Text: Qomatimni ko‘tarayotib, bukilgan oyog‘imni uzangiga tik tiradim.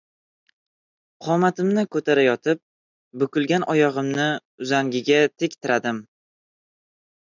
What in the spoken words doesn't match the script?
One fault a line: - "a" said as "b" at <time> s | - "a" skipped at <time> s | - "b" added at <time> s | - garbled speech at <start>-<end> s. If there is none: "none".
none